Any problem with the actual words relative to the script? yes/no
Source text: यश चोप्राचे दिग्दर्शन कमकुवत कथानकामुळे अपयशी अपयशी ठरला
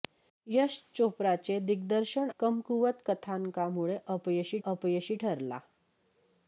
no